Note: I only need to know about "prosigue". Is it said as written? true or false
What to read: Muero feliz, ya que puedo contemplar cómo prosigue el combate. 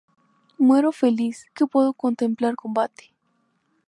false